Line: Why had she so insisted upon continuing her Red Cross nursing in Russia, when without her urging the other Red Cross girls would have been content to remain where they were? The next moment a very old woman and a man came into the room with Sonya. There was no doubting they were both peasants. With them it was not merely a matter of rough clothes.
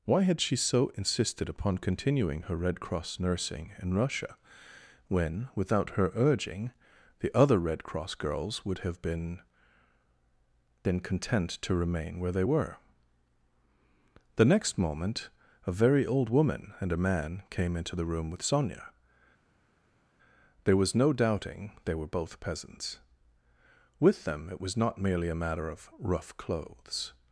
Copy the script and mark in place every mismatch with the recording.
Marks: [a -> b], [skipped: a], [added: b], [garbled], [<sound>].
Why had she so insisted upon continuing her Red Cross nursing in Russia, when without her urging the other Red Cross girls would have been [added: been] content to remain where they were? The next moment a very old woman and a man came into the room with Sonya. There was no doubting they were both peasants. With them it was not merely a matter of rough clothes.